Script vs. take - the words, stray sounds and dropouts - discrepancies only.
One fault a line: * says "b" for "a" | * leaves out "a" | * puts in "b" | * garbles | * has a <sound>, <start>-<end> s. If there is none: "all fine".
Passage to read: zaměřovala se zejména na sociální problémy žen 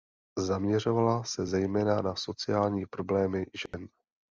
* has a dropout, 3.7-3.7 s